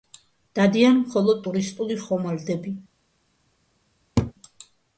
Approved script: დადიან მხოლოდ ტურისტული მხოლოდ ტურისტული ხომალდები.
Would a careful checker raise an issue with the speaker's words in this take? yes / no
yes